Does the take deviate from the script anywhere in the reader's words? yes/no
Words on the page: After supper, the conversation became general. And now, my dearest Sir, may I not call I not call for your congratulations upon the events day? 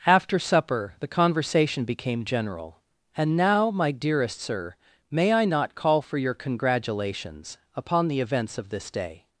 yes